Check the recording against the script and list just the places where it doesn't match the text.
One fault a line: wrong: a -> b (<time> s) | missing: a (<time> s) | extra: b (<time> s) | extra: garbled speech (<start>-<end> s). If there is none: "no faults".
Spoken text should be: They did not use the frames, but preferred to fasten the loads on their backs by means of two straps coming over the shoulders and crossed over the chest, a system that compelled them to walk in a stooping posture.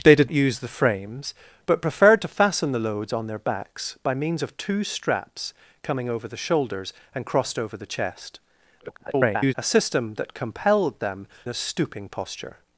missing: not (0.3 s)
extra: garbled speech (8.8-9.5 s)
missing: to walk in (11.3 s)